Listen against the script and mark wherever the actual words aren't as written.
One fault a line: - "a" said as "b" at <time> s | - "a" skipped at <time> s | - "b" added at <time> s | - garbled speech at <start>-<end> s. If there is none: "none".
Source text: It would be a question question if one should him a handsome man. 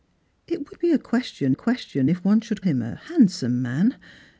none